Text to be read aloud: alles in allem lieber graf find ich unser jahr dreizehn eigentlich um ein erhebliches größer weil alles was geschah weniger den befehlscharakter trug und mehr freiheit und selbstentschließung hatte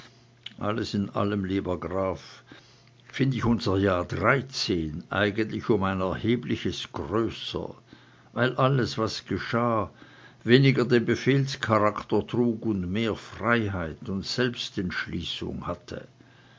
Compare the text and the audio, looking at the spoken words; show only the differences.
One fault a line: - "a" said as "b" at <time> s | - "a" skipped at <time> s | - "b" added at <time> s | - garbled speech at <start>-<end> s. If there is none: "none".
none